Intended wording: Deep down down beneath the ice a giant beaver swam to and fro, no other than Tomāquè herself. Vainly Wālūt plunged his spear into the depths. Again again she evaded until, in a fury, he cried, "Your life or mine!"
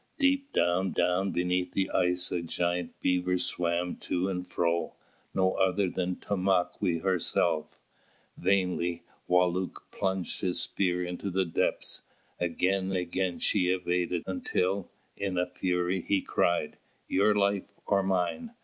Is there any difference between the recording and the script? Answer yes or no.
no